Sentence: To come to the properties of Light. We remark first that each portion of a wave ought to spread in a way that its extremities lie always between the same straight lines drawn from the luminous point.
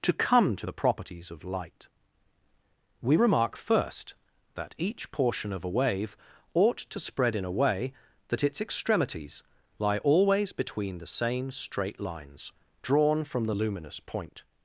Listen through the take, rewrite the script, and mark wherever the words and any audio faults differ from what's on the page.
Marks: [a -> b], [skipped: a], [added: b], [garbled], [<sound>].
To come to the properties of Light. We remark first that each portion of a wave ought to spread in a way that its extremities lie always between the same straight lines drawn from the luminous point.